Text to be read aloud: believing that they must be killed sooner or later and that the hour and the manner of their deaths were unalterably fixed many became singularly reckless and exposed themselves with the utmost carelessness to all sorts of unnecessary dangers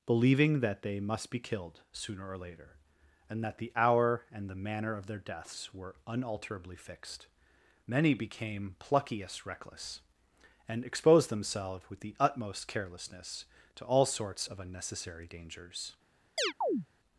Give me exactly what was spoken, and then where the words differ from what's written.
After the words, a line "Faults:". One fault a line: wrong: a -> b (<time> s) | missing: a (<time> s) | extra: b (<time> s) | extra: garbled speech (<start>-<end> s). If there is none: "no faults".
believing that they must be killed sooner or later and that the hour and the manner of their deaths were unalterably fixed many became pluckiest reckless and exposed themselves with the utmost carelessness to all sorts of unnecessary dangers
Faults:
wrong: singularly -> pluckiest (8.8 s)